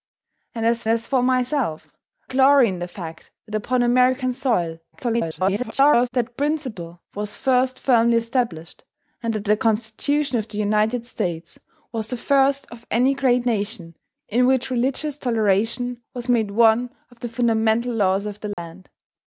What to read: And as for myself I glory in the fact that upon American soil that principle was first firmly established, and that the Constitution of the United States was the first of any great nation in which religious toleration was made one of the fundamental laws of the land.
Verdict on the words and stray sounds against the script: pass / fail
fail